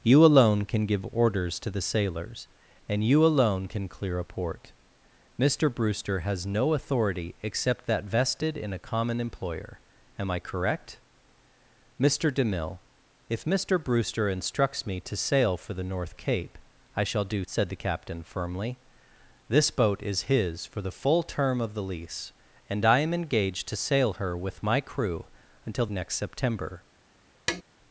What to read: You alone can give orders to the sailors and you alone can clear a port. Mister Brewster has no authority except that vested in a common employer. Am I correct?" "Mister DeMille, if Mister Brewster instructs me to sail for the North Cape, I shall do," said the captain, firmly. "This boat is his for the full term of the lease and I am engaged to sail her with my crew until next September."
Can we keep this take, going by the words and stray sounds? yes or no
no